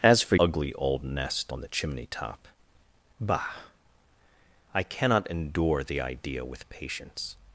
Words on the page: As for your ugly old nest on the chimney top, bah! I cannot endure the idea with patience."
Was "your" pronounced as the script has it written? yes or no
no